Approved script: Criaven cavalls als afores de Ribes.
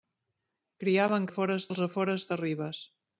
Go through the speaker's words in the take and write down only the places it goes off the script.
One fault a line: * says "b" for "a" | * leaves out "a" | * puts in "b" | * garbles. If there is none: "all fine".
* says "afores" for "cavalls"